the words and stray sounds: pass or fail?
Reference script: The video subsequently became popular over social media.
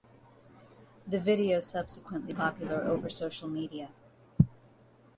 fail